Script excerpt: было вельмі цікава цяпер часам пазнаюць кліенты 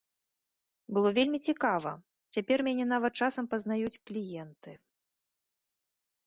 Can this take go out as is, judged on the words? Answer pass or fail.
fail